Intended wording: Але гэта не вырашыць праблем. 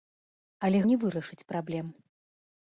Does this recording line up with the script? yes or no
no